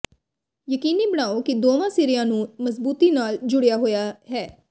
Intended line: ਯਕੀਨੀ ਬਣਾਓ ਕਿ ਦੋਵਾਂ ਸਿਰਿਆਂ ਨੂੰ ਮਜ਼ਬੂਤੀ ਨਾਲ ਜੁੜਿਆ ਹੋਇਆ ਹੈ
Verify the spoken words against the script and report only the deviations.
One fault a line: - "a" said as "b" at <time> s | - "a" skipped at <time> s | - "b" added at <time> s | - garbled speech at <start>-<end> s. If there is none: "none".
none